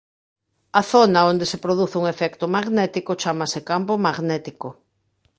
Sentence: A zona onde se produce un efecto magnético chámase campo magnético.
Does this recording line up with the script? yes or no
yes